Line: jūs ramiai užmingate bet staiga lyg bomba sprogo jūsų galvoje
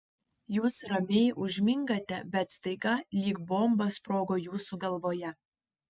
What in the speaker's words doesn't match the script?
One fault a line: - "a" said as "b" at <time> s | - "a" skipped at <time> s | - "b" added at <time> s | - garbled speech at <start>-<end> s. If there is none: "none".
none